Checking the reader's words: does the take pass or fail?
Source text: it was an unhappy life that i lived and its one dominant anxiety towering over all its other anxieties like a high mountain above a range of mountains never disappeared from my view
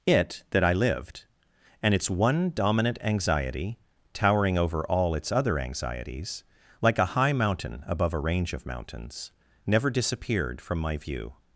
fail